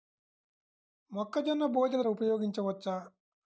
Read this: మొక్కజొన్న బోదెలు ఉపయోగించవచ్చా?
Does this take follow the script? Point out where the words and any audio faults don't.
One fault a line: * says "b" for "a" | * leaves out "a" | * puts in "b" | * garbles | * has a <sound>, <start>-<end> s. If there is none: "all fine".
all fine